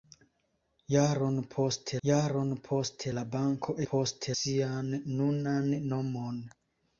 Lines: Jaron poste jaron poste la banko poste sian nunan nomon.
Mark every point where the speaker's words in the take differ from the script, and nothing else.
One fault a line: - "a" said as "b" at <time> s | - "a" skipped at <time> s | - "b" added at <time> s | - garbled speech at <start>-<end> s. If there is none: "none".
none